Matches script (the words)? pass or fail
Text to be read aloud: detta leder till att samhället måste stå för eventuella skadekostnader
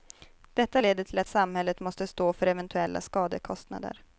pass